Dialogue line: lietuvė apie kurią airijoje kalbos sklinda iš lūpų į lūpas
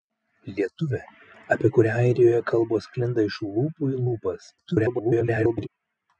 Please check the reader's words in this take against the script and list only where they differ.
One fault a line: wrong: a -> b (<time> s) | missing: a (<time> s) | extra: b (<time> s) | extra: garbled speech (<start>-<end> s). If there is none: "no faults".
extra: garbled speech (4.6-5.7 s)